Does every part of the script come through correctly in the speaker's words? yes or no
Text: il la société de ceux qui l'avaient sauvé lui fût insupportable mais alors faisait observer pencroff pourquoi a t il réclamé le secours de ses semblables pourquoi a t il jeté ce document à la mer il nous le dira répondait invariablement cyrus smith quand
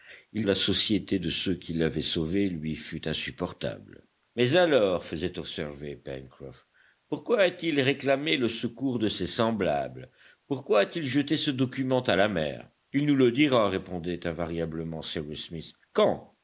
yes